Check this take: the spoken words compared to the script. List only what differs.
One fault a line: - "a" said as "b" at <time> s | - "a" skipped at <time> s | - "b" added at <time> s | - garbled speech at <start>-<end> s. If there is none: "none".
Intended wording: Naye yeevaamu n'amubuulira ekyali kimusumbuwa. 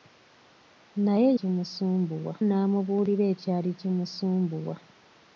- "yeevaamu" said as "kimusumbuwa" at 1.4 s